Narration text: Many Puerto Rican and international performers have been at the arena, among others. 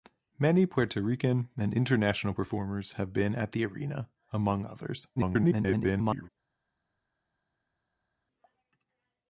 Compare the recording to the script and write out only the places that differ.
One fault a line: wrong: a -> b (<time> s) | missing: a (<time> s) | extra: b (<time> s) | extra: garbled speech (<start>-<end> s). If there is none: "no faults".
extra: garbled speech (5.2-6.3 s)